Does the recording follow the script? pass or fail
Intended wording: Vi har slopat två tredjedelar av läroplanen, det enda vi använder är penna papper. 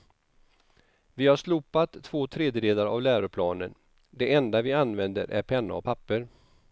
fail